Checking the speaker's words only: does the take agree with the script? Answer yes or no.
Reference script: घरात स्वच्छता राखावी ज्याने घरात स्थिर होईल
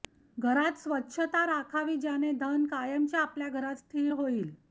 no